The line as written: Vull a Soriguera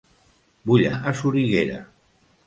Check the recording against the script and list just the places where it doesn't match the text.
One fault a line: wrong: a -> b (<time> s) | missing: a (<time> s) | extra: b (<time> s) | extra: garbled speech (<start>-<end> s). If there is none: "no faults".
no faults